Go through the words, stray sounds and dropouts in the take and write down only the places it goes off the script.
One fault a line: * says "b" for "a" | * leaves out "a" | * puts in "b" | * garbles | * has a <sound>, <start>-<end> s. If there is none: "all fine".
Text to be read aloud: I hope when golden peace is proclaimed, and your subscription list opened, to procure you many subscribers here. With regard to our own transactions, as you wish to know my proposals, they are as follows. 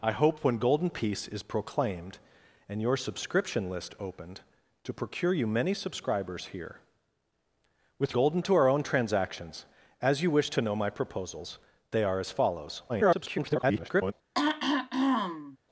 * says "golden" for "regard"
* garbles
* has a throat clearing, 14.3-15.6 s